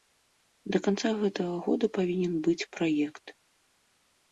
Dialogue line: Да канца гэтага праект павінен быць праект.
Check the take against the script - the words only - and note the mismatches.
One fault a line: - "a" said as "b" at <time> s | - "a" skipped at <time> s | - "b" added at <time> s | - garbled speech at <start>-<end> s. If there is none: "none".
- "праект" said as "года" at 1.7 s